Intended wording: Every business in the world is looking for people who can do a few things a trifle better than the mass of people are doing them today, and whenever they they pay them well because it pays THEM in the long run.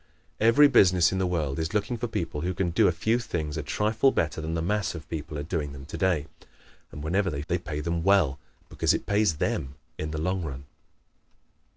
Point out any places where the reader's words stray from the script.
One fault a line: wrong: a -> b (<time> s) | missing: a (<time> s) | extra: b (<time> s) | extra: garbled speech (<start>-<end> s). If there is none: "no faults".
no faults